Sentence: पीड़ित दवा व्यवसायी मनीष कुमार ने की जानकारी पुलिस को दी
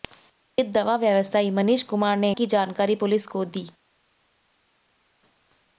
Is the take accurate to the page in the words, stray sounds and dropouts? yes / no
yes